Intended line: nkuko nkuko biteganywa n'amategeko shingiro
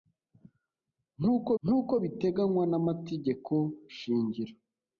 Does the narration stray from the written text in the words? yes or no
no